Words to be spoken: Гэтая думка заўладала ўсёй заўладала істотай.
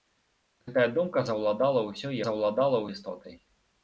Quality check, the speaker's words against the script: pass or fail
pass